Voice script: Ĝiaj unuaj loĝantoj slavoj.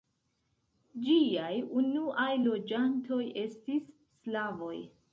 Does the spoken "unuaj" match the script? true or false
true